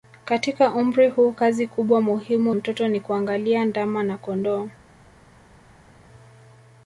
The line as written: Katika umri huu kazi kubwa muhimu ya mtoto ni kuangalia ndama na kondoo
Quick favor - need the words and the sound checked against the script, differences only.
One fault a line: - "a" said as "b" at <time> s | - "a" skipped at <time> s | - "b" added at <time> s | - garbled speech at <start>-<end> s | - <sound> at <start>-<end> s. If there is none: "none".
- "ya" skipped at 2.5 s